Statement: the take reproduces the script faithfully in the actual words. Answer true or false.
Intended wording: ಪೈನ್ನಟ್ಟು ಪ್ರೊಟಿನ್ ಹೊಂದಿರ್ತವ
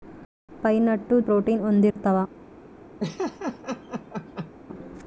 true